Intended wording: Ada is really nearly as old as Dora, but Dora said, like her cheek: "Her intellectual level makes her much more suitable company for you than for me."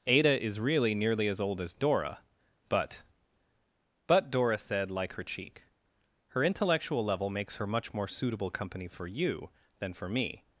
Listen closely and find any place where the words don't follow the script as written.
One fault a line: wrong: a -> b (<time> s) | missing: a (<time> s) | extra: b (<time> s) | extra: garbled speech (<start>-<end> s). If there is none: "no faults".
extra: but (4.1 s)